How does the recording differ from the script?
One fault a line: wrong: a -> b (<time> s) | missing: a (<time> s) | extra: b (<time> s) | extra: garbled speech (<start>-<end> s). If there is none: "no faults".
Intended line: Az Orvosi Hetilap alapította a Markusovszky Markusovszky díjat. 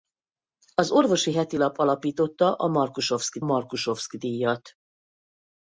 no faults